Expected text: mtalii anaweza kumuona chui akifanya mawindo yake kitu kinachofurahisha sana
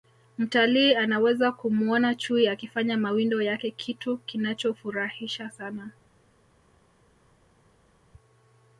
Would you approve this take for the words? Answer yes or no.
yes